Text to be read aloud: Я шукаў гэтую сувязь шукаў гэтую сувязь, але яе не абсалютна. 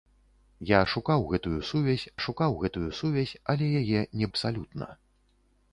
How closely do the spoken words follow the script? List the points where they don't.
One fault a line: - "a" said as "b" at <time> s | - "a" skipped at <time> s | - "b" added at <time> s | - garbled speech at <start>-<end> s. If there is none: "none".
none